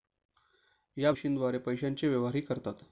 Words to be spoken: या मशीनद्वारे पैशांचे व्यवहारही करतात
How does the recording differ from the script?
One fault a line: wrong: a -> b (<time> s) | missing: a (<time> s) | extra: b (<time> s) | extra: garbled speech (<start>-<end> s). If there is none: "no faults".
no faults